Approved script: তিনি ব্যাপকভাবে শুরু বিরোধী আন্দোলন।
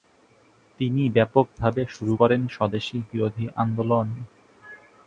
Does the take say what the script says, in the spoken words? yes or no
no